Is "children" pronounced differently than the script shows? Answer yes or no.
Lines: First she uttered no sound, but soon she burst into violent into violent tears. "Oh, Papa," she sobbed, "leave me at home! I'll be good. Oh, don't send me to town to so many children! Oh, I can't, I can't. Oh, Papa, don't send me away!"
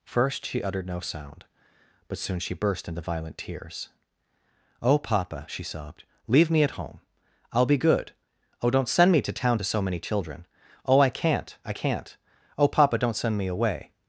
no